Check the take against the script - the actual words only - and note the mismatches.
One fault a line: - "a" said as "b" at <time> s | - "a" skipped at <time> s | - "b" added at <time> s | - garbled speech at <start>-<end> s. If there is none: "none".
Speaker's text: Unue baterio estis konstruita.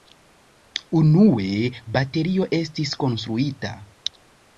none